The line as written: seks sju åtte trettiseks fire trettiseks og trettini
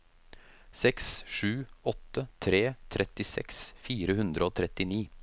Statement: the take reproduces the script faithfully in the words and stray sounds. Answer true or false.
false